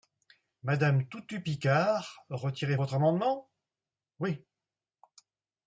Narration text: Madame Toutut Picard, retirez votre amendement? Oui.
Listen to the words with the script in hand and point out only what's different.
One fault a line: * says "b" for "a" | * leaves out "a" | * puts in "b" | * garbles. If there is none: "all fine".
all fine